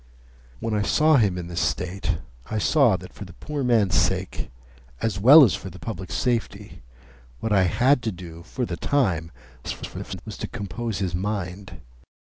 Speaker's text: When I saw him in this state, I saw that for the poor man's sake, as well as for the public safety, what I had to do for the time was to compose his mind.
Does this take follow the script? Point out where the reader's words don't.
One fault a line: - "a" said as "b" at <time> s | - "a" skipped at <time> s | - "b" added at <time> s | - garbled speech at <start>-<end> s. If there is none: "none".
- garbled speech at 9.6-10.2 s